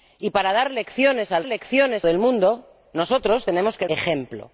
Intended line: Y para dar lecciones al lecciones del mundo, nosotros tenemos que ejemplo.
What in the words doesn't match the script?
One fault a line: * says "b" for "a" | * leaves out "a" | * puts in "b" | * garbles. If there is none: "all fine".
all fine